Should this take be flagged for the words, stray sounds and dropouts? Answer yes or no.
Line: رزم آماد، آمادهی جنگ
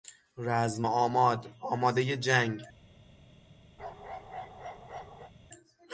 yes